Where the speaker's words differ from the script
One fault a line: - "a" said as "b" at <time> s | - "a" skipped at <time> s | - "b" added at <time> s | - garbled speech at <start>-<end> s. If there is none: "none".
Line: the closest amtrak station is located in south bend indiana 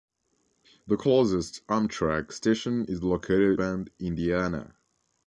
- "in south" skipped at 3.6 s